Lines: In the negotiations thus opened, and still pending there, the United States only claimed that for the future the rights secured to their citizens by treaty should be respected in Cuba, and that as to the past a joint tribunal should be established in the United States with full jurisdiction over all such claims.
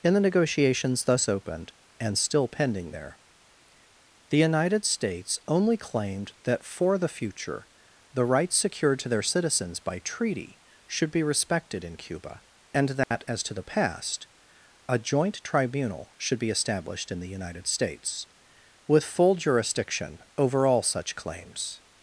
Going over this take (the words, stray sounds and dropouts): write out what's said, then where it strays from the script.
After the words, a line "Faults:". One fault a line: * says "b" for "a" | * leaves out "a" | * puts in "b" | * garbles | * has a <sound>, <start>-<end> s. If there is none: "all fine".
In the negotiations thus opened, and still pending there, the United States only claimed that for the future the rights secured to their citizens by treaty should be respected in Cuba, and that as to the past a joint tribunal should be established in the United States with full jurisdiction over all such claims.
Faults:
* has a dropout, 13.0-13.1 s